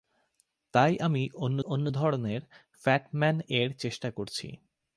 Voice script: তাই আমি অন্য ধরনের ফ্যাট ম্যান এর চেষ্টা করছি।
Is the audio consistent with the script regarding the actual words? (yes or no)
no